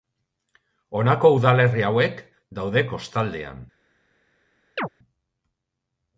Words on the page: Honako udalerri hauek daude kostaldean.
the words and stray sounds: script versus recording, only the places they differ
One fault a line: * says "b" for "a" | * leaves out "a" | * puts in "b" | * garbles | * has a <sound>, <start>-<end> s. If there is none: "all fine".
* has a chirp, 4.8-4.9 s